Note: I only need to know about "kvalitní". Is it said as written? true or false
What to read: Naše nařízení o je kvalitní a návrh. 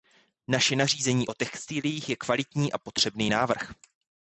true